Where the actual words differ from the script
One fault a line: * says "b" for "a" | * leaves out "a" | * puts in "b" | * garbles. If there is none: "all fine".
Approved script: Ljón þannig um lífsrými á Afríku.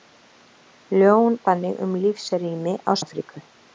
all fine